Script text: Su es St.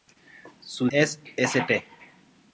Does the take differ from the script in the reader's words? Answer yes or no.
no